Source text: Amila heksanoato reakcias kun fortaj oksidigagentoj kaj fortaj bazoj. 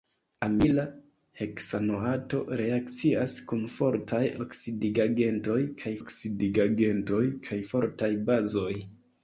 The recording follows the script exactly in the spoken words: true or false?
false